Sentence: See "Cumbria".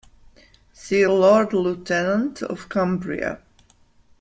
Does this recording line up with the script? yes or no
no